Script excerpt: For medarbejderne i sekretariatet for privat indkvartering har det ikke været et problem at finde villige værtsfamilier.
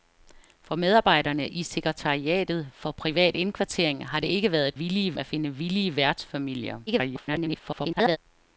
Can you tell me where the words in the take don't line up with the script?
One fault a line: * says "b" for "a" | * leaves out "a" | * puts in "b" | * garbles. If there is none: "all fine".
* says "villige" for "problem"
* garbles